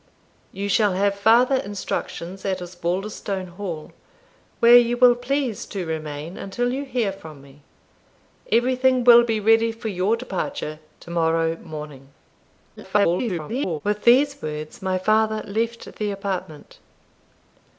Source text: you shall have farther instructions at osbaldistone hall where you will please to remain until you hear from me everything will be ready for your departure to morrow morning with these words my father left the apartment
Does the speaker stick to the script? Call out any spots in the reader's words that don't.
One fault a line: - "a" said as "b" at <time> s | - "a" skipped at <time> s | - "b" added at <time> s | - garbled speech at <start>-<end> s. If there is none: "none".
- garbled speech at 12.8-13.8 s